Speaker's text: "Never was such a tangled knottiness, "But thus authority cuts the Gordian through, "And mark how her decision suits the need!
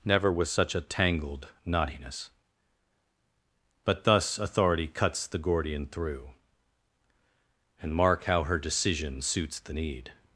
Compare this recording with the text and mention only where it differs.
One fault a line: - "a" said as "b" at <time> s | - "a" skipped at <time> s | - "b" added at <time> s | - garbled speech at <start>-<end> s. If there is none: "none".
none